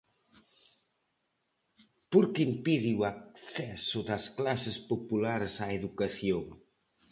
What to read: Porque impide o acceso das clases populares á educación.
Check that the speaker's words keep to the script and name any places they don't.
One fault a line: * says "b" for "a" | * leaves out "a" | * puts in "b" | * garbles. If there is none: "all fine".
all fine